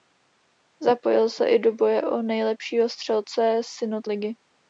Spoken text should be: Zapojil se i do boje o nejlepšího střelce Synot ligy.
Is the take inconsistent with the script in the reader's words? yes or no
no